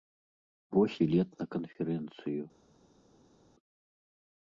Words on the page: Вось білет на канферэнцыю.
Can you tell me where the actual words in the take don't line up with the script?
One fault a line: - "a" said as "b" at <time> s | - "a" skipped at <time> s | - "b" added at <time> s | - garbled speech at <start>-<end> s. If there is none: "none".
none